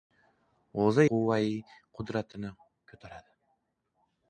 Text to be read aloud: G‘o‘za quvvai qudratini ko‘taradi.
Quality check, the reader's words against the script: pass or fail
pass